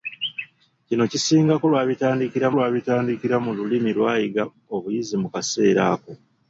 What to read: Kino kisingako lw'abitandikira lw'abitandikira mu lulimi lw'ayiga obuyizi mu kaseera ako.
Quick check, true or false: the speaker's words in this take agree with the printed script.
true